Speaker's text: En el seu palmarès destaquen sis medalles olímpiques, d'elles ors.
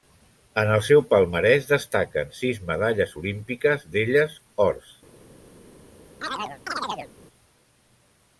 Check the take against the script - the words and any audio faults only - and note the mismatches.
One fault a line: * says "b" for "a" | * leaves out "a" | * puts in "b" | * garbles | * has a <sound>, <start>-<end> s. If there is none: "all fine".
* has a chirp, 6.2-7.1 s